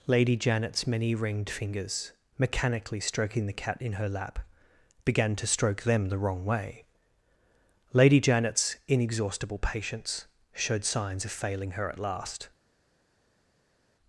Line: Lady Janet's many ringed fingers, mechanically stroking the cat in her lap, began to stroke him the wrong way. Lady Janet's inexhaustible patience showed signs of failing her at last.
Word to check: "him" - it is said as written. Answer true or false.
false